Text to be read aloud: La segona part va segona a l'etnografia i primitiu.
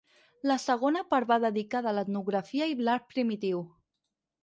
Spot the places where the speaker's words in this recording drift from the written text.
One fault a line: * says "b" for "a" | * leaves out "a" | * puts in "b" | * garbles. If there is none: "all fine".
* says "dedicada" for "segona"
* puts in "l'art"